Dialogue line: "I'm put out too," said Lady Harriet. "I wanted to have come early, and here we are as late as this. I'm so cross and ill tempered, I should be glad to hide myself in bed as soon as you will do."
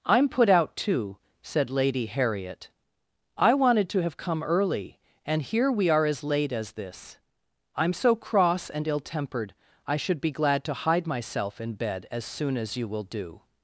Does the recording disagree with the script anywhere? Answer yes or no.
no